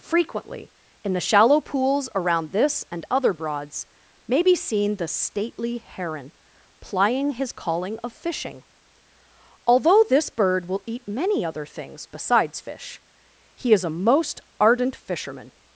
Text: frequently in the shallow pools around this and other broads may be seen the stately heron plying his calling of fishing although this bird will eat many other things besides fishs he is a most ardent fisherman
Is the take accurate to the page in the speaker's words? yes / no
no